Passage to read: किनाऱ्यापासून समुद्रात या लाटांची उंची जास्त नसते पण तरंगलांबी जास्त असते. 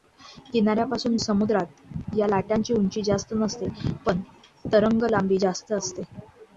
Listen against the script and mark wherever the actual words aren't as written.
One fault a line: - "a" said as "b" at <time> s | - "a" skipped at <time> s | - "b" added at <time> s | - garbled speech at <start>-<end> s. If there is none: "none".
none